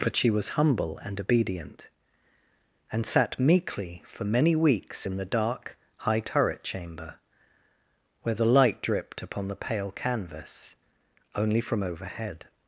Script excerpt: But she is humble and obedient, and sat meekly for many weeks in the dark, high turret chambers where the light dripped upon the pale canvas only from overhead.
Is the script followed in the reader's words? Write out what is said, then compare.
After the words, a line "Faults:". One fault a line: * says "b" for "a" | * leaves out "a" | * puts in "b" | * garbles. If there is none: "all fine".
But she was humble and obedient, and sat meekly for many weeks in the dark, high turret chamber where the light dripped upon the pale canvas only from overhead.
Faults:
* says "was" for "is"
* says "chamber" for "chambers"